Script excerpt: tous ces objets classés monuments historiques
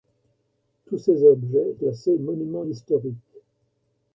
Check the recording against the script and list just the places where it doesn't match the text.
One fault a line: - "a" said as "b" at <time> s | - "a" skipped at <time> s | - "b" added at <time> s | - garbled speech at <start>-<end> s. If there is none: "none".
none